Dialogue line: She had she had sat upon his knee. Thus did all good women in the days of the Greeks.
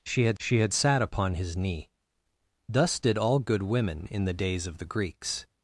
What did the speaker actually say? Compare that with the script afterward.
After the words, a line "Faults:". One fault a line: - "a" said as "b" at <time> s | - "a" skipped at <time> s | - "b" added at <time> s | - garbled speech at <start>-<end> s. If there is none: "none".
She had she had sat upon his knee. Thus did all good women in the days of the Greeks.
Faults:
none